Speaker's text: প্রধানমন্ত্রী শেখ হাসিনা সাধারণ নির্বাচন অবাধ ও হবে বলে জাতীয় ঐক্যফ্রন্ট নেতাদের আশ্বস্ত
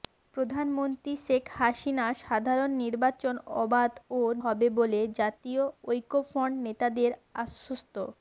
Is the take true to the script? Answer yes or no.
yes